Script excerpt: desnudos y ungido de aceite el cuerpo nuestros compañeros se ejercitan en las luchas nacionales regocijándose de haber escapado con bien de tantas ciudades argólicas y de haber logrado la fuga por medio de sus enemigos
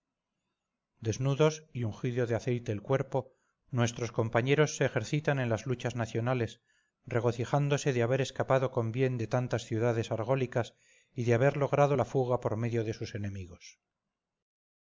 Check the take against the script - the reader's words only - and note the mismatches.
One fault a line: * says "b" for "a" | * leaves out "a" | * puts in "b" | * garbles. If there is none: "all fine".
all fine